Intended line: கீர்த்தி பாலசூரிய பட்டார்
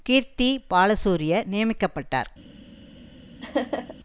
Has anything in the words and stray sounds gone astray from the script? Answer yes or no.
yes